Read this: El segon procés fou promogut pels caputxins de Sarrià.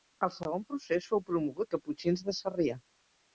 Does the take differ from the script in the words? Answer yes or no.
yes